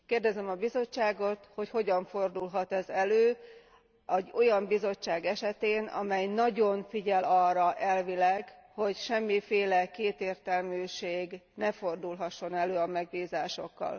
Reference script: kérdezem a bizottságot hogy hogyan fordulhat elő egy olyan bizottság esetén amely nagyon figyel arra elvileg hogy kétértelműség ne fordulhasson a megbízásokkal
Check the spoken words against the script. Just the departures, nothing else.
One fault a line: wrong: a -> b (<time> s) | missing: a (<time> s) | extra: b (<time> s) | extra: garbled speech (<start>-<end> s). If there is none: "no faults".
extra: ez (2.7 s)
extra: semmiféle (9.0 s)
extra: elő (12.5 s)